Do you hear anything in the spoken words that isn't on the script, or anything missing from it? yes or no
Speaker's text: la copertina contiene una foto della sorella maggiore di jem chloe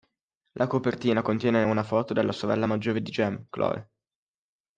no